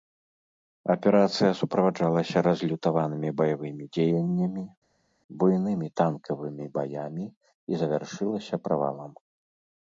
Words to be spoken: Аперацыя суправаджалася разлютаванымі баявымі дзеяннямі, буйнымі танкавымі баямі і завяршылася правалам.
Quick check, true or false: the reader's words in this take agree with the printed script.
true